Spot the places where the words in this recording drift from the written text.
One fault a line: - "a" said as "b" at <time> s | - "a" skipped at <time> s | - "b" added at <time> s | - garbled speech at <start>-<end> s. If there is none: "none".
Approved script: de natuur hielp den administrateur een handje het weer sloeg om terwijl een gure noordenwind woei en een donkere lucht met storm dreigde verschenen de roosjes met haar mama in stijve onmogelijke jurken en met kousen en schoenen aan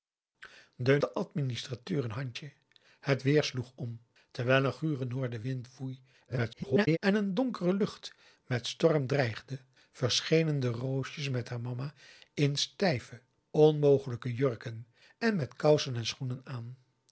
- "natuur hielp" skipped at 1.0 s
- garbled speech at 6.3-7.0 s